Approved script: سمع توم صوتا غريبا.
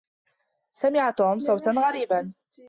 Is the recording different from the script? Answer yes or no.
no